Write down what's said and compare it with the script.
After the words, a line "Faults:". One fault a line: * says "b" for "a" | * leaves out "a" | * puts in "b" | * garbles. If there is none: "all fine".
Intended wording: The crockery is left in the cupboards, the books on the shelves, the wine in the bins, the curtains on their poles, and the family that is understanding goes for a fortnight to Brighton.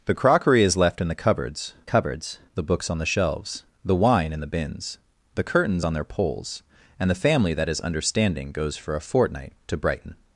The crockery is left in the cupboards cupboards, the books on the shelves, the wine in the bins, the curtains on their poles, and the family that is understanding goes for a fortnight to Brighton.
Faults:
* puts in "cupboards"